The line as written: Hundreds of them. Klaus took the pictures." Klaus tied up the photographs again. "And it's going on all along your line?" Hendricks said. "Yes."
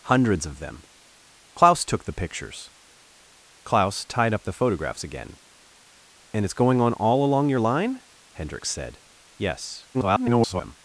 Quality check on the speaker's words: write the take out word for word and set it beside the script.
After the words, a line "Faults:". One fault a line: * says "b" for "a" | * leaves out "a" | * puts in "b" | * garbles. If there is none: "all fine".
Hundreds of them. Klaus took the pictures." Klaus tied up the photographs again. "And it's going on all along your line?" Hendricks said. "Yes." [garbled]
Faults:
* garbles